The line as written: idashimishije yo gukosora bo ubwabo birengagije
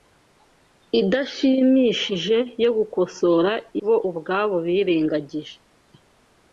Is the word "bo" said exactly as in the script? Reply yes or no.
yes